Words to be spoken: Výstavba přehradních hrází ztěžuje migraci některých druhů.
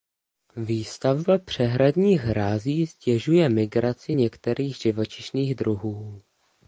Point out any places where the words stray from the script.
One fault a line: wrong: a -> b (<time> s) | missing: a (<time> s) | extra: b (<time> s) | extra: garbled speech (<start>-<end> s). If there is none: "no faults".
extra: živočišných (4.8 s)